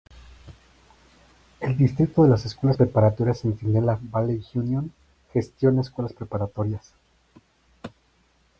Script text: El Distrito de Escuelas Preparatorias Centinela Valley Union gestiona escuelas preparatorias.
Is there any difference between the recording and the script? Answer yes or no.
no